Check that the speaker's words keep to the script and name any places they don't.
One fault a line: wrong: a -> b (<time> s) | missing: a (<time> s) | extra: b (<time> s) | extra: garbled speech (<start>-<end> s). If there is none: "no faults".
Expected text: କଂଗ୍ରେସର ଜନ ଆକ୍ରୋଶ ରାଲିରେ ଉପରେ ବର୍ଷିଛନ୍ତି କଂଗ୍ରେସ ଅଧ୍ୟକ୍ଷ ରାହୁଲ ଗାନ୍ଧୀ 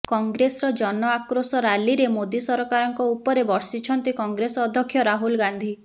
extra: ମୋଦି ସରକାରଙ୍କ (2.1 s)